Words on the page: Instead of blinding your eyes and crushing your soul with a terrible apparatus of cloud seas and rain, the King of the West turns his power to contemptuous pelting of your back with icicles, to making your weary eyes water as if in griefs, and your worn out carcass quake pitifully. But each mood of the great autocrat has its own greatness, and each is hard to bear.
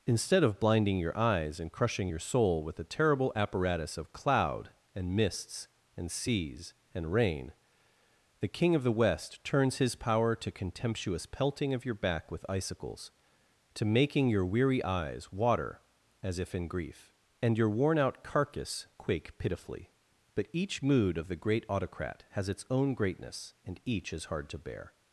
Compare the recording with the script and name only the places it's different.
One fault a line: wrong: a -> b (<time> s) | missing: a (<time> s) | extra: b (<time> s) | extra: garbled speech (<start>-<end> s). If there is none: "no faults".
extra: and mists and (5.0 s)
wrong: griefs -> grief (16.7 s)